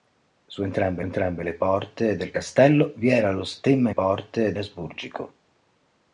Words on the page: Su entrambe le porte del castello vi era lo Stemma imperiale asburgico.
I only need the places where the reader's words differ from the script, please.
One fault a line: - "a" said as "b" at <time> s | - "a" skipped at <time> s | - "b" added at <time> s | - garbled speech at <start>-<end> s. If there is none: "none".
- "entrambe" added at 1.0 s
- "imperiale" said as "porte" at 3.9 s